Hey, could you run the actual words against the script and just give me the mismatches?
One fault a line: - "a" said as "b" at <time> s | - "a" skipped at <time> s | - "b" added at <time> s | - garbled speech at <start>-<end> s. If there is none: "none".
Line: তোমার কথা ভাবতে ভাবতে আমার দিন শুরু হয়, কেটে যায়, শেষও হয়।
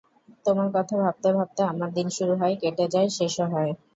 none